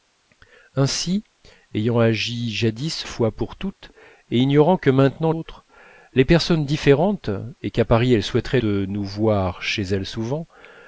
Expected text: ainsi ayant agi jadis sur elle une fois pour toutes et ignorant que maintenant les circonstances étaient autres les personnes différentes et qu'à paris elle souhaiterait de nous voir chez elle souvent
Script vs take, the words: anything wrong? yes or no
yes